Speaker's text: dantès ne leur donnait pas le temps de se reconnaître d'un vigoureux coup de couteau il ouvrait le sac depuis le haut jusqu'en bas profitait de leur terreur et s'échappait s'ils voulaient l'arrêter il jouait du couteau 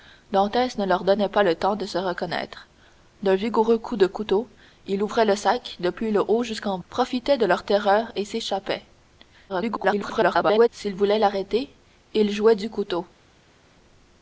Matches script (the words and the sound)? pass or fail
fail